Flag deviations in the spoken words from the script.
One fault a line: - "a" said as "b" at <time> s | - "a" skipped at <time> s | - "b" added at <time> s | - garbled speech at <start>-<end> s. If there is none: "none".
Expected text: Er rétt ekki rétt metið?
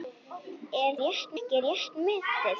none